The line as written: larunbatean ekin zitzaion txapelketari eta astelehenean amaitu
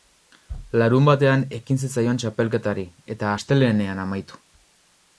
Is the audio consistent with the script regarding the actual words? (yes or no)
yes